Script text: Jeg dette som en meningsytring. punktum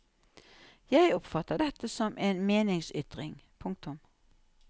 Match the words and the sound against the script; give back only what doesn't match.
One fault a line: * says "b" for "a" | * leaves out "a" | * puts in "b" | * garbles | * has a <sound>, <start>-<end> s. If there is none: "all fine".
* puts in "oppfatter"